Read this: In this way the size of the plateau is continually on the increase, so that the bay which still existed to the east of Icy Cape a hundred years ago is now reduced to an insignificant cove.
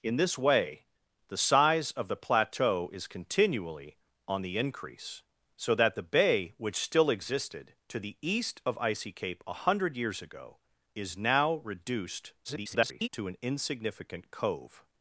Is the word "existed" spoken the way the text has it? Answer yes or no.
yes